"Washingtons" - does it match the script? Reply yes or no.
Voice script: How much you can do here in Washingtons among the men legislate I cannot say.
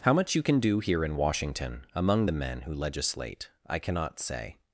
no